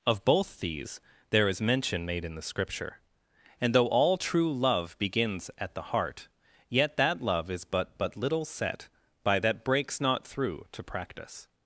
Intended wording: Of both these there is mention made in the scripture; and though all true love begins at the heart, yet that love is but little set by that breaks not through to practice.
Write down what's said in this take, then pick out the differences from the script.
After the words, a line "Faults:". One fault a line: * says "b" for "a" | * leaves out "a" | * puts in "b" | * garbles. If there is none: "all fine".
Of both these there is mention made in the scripture; and though all true love begins at the heart, yet that love is but but little set by that breaks not through to practice.
Faults:
* puts in "but"